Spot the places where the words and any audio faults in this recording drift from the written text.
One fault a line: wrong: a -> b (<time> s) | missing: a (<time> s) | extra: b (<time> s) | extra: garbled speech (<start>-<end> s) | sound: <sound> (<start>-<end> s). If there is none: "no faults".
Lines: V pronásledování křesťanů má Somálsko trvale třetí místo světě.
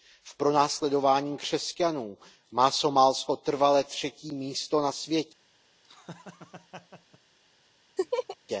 extra: na (4.8 s)
sound: laugh (5.8-7.2 s)
sound: laugh (8.0-8.4 s)